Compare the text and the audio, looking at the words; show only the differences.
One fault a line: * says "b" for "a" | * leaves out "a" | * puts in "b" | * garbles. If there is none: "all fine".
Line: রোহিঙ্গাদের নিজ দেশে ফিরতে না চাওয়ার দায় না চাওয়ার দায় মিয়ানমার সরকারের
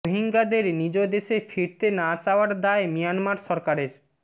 * leaves out "না চাওয়ার দায়"